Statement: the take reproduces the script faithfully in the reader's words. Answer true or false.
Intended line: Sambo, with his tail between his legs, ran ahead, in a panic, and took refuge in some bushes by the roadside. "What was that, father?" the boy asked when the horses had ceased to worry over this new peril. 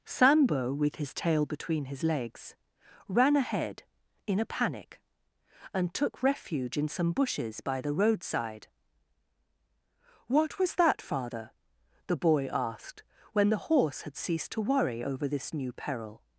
false